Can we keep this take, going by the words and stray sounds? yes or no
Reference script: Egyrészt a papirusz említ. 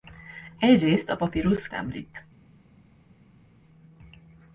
yes